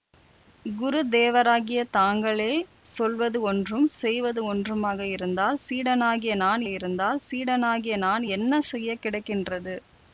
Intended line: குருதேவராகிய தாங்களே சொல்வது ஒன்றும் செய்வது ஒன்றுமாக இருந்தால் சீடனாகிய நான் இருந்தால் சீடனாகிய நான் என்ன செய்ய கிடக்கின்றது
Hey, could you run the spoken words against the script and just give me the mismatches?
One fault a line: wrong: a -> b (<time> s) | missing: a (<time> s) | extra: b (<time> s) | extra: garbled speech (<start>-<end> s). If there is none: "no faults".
no faults